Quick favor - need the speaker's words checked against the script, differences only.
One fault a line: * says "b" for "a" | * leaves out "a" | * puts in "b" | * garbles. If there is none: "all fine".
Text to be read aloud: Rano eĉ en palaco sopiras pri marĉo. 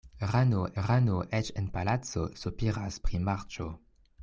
* puts in "rano"